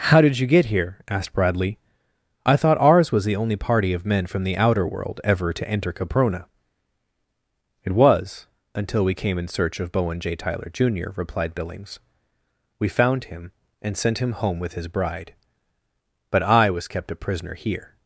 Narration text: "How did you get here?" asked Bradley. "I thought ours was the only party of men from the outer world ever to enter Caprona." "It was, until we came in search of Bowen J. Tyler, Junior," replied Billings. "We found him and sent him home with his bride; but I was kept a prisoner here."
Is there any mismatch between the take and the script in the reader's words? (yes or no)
no